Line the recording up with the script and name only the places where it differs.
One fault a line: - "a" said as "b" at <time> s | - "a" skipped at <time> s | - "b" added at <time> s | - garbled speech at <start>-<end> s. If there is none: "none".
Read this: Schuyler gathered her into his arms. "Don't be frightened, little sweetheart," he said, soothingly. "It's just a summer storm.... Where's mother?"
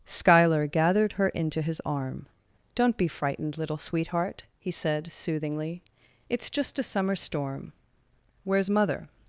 - "arms" said as "arm" at 1.9 s